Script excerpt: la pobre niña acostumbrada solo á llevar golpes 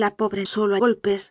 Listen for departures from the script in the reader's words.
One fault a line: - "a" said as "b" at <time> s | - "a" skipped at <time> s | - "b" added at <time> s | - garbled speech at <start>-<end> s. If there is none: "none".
- "niña acostumbrada" skipped at 0.4 s
- "llevar" skipped at 0.8 s